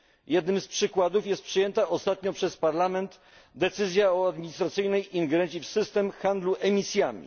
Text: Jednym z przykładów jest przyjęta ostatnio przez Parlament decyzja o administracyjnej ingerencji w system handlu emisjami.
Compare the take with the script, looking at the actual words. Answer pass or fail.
pass